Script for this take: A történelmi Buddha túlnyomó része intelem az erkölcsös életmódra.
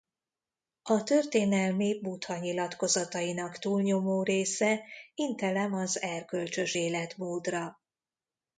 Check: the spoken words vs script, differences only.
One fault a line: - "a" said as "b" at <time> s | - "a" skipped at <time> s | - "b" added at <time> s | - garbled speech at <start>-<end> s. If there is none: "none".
- "nyilatkozatainak" added at 2.4 s